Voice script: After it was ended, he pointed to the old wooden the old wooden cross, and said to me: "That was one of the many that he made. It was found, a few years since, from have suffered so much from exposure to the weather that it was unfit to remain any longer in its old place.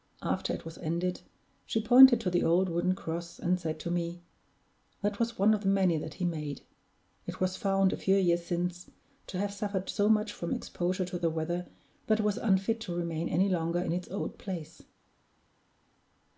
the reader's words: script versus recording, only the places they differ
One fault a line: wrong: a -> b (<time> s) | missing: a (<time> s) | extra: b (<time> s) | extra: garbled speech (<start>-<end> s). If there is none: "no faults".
wrong: he -> she (1.7 s)
missing: the old wooden (3.0 s)
wrong: from -> to (9.3 s)